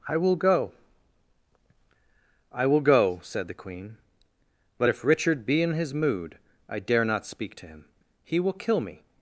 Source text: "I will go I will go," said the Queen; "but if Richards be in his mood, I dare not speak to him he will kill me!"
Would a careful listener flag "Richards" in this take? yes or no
yes